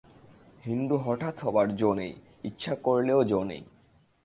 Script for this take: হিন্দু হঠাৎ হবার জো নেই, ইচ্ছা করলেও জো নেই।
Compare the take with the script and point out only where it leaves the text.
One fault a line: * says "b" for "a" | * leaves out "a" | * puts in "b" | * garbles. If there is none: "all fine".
all fine